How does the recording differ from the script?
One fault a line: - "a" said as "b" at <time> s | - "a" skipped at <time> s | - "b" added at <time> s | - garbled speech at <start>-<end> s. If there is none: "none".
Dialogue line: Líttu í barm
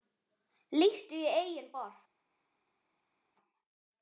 - "eigin" added at 1.4 s